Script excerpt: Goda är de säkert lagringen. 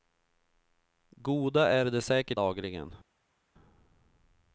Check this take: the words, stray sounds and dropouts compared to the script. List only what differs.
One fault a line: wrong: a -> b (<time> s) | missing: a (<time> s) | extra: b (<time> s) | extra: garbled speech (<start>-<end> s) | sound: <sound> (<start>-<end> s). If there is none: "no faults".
no faults